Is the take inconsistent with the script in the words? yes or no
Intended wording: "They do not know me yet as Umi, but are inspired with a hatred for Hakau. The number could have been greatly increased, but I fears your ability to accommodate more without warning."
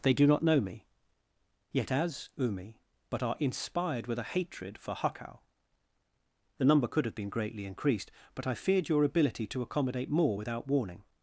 yes